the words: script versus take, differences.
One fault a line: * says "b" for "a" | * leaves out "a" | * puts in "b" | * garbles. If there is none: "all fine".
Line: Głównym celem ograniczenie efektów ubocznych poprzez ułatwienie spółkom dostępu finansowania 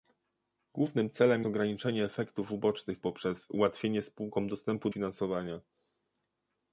all fine